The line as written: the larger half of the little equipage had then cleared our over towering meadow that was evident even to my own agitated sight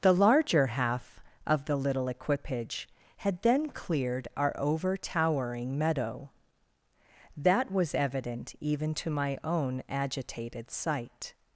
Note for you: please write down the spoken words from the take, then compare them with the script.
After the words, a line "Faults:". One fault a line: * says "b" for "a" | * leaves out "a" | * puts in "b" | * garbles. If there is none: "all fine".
the larger half of the little equipage had then cleared our over towering meadow that was evident even to my own agitated sight
Faults:
all fine